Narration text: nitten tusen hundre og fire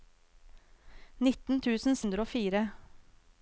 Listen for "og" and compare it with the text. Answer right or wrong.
right